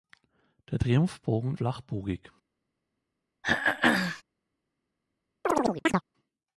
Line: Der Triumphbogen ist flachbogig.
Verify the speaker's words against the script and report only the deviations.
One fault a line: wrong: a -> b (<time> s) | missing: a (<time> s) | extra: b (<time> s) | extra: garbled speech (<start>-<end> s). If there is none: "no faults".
missing: ist (1.6 s)